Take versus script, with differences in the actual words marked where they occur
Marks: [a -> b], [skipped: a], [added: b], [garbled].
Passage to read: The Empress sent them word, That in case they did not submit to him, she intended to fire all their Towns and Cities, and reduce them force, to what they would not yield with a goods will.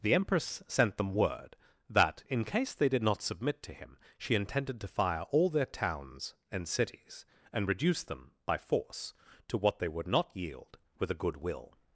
The Empress sent them word, That in case they did not submit to him, she intended to fire all their Towns and Cities, and reduce them [added: by] force, to what they would not yield with a [goods -> good] will.